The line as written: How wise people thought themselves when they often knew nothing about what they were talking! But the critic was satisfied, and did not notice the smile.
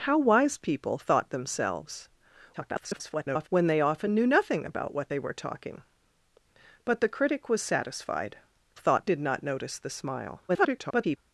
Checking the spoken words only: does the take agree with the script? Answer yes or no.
no